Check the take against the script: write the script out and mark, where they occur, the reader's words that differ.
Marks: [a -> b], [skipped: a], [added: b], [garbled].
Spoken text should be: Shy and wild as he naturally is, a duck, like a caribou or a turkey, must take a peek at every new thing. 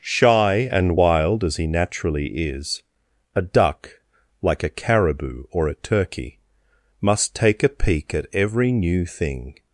Shy and wild as he naturally is, a duck, like a caribou or a turkey, must take a peek at every new thing.